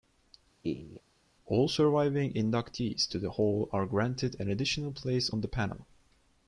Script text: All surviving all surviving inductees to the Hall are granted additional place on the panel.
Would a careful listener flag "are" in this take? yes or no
no